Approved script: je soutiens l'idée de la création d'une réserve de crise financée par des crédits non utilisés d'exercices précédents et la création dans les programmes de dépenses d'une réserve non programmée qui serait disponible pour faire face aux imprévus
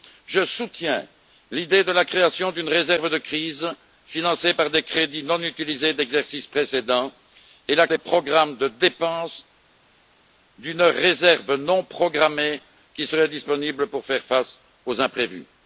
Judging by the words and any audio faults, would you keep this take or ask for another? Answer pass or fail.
fail